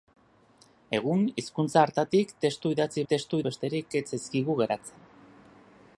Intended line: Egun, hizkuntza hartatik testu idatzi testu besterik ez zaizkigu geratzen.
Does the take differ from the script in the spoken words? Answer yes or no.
no